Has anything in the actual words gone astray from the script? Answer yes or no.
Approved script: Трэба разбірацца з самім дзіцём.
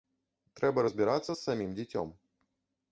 no